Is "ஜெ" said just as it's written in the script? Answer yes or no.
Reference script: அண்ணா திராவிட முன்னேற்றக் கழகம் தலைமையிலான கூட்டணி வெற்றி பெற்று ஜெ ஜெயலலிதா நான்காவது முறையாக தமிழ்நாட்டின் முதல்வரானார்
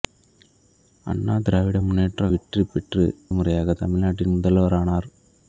no